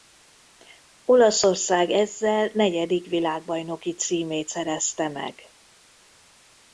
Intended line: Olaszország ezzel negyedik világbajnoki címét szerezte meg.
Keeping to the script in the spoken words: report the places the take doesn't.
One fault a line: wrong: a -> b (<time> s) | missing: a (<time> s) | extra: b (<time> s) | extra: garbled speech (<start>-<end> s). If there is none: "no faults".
no faults